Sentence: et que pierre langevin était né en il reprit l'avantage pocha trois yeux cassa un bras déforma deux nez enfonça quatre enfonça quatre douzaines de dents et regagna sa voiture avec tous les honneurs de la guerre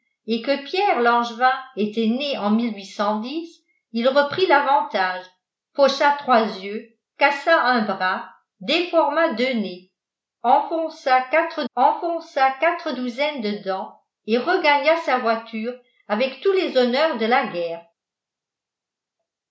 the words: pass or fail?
pass